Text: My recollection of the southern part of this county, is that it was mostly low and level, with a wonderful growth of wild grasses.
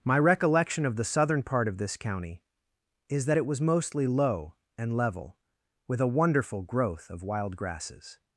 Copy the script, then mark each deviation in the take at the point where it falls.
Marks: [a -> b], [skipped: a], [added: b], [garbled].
My recollection of the southern part of this county, is that it was mostly low and level, with a wonderful growth of wild grasses.